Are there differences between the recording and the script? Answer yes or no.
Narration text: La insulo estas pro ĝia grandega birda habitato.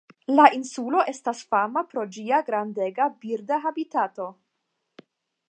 yes